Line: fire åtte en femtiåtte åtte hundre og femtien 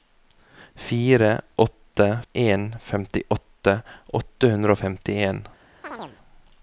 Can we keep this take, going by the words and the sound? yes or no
no